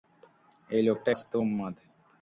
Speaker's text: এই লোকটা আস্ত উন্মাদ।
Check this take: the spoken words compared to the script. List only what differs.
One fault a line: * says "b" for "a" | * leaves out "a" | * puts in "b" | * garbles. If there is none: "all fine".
all fine